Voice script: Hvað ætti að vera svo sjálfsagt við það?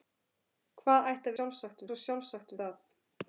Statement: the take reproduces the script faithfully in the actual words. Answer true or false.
false